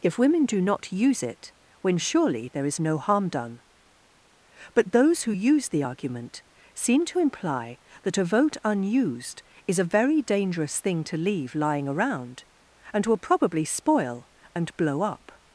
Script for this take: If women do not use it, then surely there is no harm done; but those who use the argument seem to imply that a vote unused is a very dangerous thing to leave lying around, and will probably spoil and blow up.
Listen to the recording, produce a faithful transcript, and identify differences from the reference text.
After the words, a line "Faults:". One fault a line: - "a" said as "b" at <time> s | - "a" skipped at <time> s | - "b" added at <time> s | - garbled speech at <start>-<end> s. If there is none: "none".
If women do not use it, when surely there is no harm done; but those who use the argument seem to imply that a vote unused is a very dangerous thing to leave lying around, and will probably spoil and blow up.
Faults:
- "then" said as "when" at 1.8 s